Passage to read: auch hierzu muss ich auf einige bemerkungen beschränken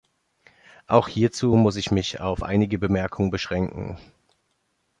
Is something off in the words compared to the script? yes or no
yes